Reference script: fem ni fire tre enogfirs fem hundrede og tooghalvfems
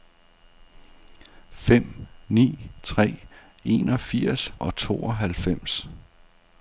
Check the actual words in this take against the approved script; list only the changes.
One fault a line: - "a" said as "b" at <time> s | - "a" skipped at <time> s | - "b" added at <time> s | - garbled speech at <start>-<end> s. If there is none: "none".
- "fire" skipped at 2.7 s
- "fem hundrede" skipped at 4.5 s